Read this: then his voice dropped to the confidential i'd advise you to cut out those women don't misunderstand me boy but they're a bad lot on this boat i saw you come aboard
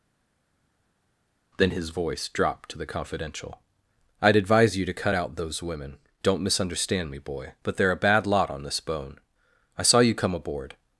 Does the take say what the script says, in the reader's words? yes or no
no